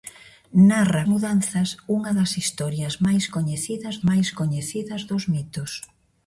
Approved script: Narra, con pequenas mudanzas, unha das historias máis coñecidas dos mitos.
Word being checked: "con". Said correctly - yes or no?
no